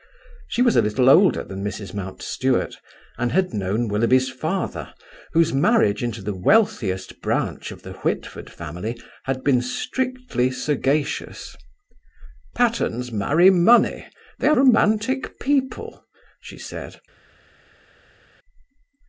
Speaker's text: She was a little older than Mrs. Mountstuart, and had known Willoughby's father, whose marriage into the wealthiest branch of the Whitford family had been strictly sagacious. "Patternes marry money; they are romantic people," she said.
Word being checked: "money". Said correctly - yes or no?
yes